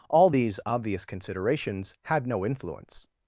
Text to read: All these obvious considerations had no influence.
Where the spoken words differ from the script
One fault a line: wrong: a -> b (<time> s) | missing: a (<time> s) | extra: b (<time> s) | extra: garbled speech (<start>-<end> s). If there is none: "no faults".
no faults